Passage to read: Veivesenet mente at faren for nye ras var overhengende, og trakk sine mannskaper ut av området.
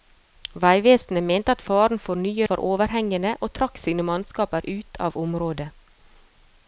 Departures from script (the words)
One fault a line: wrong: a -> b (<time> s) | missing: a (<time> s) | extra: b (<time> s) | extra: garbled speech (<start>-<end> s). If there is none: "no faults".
missing: ras (2.5 s)